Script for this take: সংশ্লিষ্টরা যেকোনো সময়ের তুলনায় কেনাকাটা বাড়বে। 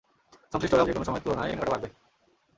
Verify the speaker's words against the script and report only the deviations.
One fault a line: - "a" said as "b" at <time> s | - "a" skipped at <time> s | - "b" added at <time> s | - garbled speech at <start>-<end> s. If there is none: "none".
none